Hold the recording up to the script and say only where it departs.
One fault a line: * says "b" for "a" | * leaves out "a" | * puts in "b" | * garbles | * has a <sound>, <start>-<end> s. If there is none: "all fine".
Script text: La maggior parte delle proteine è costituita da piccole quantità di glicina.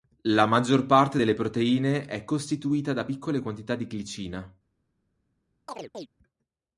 * has a chirp, 5.7-6.1 s